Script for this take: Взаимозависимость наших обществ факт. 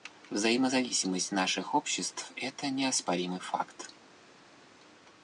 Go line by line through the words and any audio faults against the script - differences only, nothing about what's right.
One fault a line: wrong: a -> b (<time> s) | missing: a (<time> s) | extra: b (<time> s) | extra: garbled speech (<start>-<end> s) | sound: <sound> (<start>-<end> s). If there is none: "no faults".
extra: это неоспоримый (2.3 s)